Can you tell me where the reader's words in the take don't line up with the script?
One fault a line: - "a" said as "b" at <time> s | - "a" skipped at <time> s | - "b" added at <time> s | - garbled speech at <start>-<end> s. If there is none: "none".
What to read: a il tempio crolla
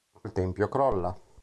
none